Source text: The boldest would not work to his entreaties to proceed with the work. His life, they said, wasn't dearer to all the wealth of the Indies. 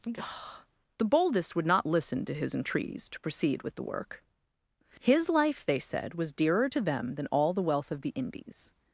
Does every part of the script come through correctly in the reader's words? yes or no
no